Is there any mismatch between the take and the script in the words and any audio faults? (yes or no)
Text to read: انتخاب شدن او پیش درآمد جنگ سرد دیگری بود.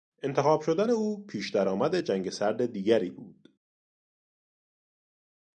no